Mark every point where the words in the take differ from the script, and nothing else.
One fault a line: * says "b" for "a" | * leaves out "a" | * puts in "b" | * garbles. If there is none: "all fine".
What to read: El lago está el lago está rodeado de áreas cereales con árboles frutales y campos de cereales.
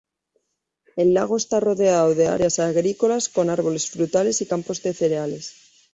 * leaves out "el lago está"
* says "agrícolas" for "cereales"